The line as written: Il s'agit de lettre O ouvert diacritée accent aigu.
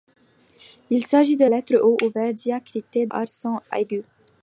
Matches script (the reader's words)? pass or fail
pass